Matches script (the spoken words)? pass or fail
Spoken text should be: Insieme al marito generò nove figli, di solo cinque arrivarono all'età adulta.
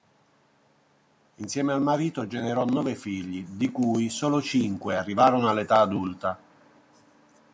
fail